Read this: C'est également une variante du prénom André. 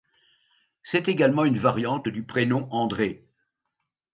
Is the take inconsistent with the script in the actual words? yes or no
no